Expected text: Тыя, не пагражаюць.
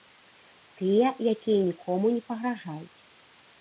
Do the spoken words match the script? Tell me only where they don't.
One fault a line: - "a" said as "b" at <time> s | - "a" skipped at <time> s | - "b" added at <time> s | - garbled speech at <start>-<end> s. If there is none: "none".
- "якія нікому" added at 1.3 s